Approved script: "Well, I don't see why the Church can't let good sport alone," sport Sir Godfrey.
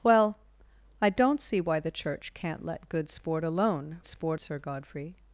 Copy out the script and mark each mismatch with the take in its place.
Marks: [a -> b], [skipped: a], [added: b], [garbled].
"Well, I don't see why the Church can't let good sport alone," sport Sir Godfrey.